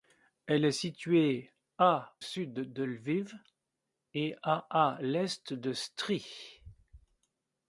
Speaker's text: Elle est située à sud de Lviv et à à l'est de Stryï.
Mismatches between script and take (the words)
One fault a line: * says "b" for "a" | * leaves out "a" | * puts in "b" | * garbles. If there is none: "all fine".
all fine